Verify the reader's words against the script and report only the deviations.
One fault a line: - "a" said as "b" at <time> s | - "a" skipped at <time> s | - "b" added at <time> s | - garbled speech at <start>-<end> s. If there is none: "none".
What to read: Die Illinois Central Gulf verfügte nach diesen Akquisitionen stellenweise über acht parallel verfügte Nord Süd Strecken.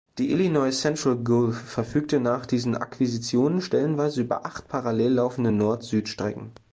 - "verfügte" said as "laufende" at 5.1 s